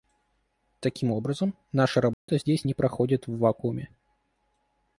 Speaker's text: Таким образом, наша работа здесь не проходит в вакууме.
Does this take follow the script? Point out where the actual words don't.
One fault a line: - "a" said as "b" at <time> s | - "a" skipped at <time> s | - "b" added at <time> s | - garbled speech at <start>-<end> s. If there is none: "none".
none